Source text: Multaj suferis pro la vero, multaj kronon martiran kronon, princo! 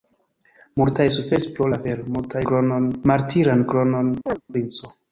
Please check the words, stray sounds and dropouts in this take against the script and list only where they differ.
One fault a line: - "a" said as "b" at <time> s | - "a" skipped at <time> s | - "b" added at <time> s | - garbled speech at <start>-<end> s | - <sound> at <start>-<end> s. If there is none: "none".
- chirp at 4.3-4.4 s